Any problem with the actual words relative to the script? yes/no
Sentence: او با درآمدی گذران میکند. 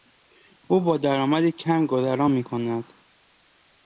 yes